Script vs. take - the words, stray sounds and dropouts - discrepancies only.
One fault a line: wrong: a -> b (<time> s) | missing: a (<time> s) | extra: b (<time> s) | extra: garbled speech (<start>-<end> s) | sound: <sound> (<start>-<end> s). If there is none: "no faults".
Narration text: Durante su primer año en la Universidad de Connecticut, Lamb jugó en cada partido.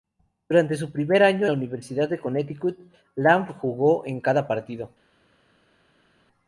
missing: en (1.4 s)